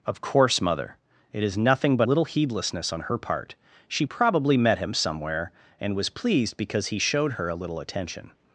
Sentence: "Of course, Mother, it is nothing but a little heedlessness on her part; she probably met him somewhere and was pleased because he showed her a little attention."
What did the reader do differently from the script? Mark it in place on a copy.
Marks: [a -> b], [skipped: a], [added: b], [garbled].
"Of course, Mother, it is nothing but [skipped: a] little heedlessness on her part; she probably met him somewhere and was pleased because he showed her a little attention."